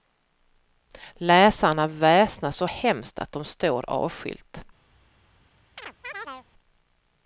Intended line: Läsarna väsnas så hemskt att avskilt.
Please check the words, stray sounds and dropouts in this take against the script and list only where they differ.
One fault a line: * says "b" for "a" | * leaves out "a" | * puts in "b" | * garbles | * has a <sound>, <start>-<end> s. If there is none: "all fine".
* puts in "de står"
* has a chirp, 5.8-6.5 s